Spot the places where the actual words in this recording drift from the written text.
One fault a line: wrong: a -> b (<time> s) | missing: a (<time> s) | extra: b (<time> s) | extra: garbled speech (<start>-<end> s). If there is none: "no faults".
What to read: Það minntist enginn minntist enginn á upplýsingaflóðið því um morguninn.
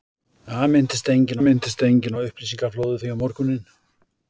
no faults